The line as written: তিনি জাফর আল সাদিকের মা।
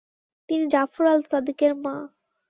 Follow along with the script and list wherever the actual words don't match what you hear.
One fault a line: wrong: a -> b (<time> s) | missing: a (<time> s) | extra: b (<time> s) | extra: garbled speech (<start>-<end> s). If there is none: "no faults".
no faults